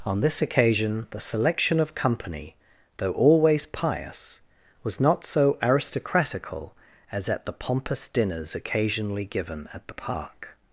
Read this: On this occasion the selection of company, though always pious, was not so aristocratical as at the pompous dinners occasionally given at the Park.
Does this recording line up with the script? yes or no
yes